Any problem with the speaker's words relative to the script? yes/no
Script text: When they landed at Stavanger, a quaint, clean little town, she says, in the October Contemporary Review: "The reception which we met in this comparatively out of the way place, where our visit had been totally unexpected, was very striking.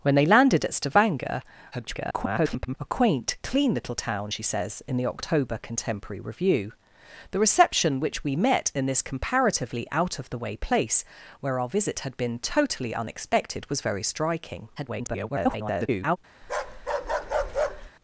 yes